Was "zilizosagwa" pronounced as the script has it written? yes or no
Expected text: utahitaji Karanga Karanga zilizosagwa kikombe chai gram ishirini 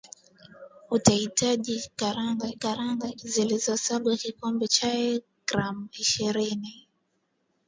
yes